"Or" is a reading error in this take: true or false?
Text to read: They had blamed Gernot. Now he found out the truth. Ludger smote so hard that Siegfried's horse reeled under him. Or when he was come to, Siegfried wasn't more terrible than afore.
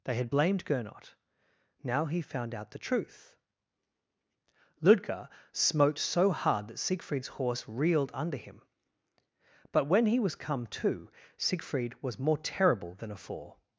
true